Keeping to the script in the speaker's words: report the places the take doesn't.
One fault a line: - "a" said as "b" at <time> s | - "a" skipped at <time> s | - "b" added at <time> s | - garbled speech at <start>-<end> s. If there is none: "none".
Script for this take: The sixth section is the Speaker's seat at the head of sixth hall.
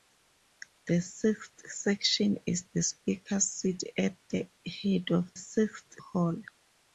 none